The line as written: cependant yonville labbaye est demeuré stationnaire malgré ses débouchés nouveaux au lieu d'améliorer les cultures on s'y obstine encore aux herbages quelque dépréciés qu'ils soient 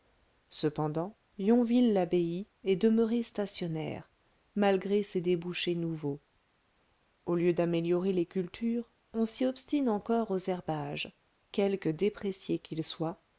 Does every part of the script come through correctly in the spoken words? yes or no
yes